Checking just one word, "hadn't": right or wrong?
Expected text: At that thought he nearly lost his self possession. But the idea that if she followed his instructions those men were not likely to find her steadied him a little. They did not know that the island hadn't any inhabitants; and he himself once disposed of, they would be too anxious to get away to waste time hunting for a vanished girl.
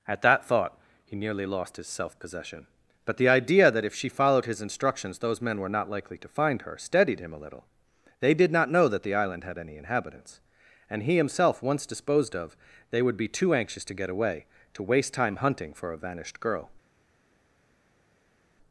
wrong